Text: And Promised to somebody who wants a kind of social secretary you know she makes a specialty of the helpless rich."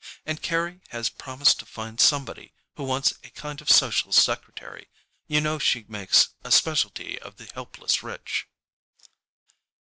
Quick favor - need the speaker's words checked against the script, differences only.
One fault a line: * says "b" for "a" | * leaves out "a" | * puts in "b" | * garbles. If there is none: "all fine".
* puts in "Carry has"
* puts in "find"